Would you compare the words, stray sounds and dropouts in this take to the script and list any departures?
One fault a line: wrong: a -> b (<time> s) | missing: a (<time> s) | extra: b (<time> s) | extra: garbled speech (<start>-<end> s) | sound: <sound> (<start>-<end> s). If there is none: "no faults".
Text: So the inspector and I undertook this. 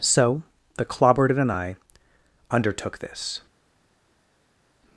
wrong: inspector -> clobbered (0.8 s)